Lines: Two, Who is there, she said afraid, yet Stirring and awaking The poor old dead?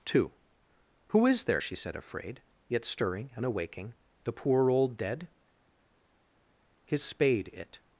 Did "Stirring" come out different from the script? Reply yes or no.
no